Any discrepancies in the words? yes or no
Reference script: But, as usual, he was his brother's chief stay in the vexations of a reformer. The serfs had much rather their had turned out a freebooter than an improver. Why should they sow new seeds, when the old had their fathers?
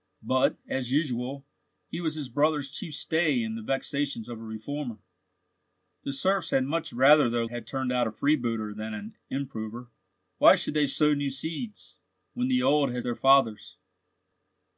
no